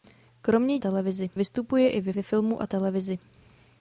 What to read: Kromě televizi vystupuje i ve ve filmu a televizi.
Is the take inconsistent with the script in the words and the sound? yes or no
no